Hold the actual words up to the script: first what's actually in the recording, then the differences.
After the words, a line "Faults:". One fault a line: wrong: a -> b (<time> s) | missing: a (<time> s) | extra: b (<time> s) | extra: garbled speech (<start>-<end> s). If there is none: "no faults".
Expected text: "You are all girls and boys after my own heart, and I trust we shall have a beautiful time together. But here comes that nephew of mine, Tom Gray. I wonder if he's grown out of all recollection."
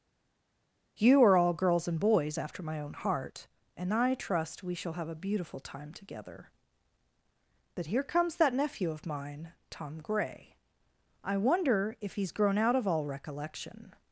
"You are all girls and boys after my own heart, and I trust we shall have a beautiful time together. But here comes that nephew of mine, Tom Gray. I wonder if he's grown out of all recollection."
Faults:
no faults